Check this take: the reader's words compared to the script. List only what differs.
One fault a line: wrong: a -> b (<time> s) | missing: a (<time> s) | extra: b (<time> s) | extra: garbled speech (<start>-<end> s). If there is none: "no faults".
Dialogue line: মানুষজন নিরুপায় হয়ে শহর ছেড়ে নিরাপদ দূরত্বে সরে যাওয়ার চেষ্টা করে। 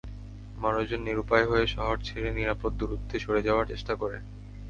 no faults